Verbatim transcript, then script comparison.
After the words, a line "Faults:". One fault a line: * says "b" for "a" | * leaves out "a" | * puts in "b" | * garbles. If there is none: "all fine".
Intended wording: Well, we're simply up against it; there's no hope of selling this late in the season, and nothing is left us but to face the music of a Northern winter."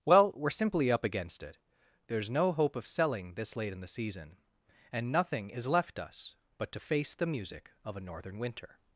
Well, we're simply up against it; there's no hope of selling this late in the season, and nothing is left us but to face the music of a Northern winter."
Faults:
all fine